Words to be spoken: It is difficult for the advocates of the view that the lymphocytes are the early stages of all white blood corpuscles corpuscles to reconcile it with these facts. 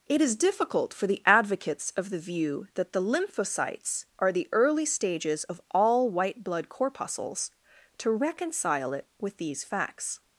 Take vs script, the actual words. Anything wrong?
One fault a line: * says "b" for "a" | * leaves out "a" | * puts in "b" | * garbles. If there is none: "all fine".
* leaves out "corpuscles"